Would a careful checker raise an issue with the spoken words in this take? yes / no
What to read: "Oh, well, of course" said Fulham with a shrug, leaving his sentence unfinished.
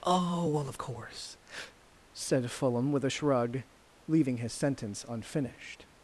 no